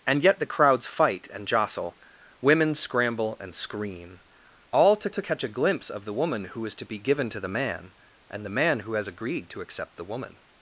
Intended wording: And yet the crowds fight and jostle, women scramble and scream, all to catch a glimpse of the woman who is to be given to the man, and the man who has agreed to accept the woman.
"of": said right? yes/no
yes